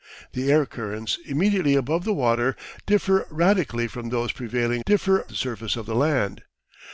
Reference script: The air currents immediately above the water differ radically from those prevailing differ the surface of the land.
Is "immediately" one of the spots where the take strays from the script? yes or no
no